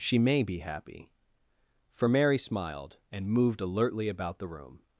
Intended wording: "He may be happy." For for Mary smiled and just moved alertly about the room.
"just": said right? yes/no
no